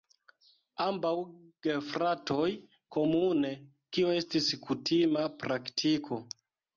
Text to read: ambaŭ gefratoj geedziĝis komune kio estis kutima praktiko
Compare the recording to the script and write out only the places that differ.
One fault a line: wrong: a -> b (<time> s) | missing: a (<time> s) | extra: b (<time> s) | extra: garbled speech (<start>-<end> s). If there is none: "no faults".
missing: geedziĝis (2.5 s)